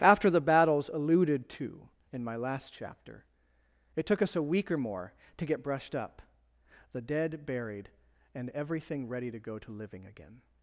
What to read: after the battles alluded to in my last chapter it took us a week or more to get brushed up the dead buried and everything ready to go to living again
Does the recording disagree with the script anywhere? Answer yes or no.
no